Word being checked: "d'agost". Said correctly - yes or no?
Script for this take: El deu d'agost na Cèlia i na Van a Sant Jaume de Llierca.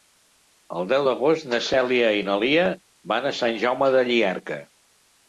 yes